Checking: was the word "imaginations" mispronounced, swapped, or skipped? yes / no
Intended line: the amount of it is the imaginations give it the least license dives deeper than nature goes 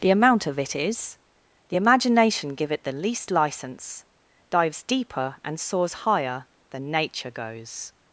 yes